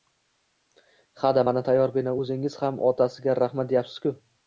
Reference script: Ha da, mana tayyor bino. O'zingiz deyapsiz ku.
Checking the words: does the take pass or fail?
fail